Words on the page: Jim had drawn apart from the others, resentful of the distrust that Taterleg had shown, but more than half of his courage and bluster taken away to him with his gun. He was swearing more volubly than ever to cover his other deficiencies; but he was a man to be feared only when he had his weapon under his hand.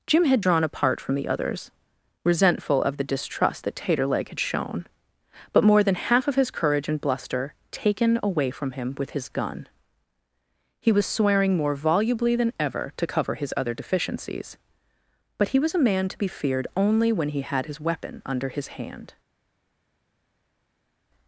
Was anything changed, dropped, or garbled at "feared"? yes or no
no